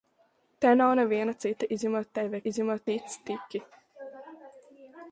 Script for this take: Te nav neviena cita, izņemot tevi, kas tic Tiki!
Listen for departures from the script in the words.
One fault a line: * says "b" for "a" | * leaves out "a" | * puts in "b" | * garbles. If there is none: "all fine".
* says "izņemot" for "kas"